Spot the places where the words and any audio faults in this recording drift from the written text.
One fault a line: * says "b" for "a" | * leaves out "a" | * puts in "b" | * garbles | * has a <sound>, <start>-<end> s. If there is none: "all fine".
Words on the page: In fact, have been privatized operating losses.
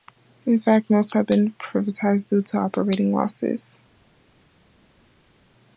* puts in "most"
* puts in "due to"